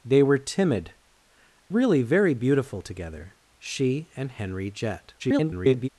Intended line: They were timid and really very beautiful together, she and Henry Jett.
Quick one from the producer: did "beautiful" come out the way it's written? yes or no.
yes